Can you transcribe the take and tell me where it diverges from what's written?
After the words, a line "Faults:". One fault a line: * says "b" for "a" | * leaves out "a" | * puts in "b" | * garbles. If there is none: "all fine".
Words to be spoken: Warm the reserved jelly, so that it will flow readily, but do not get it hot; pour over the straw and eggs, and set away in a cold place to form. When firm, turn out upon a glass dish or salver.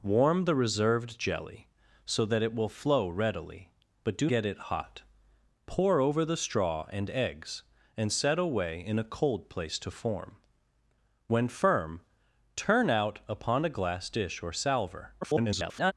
Warm the reserved jelly, so that it will flow readily, but do get it hot; pour over the straw and eggs, and set away in a cold place to form. When firm, turn out upon a glass dish or salver. [garbled]
Faults:
* leaves out "not"
* garbles